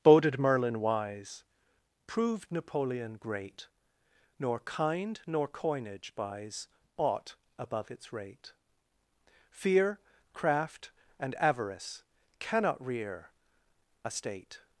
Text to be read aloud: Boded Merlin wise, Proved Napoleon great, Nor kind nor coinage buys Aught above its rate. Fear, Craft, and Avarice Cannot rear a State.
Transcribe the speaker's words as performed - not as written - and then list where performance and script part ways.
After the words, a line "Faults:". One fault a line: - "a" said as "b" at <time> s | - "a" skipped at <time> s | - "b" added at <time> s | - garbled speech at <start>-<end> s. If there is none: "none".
Boded Merlin wise, Proved Napoleon great, Nor kind nor coinage buys Aught above its rate. Fear, Craft, and Avarice Cannot rear a State.
Faults:
none